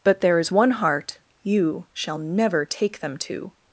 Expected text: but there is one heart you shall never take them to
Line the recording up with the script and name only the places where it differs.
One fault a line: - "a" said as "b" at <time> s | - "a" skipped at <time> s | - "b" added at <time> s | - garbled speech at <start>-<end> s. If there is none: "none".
none